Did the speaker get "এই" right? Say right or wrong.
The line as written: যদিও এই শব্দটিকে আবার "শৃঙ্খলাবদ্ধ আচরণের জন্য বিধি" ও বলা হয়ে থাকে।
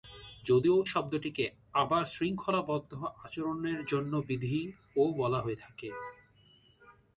wrong